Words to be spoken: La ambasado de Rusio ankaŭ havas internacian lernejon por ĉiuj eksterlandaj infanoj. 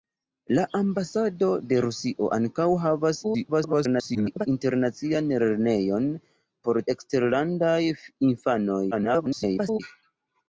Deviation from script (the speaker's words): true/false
true